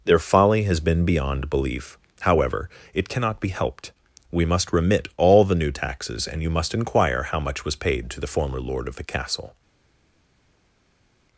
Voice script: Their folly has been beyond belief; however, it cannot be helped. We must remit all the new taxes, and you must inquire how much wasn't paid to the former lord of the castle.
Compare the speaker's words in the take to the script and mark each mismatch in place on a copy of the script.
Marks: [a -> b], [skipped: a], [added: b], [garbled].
Their folly has been beyond belief; however, it cannot be helped. We must remit all the new taxes, and you must inquire how much [wasn't -> was] paid to the former lord of the castle.